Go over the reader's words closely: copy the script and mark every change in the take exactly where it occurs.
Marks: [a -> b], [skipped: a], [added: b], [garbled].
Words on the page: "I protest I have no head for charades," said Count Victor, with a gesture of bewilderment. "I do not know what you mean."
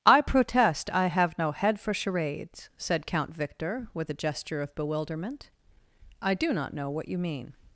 "I protest I have no head for charades," said Count Victor, with a gesture of bewilderment. "I do not know what you mean."